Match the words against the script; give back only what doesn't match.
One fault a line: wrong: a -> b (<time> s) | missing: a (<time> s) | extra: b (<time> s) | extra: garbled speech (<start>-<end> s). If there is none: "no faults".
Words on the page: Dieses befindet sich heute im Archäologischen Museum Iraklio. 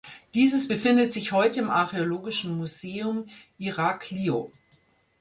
no faults